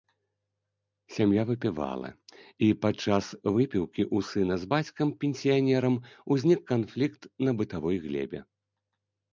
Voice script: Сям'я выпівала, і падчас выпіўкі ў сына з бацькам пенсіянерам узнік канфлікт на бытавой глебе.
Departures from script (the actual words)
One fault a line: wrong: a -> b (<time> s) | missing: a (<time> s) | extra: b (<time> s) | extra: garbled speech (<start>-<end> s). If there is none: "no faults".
no faults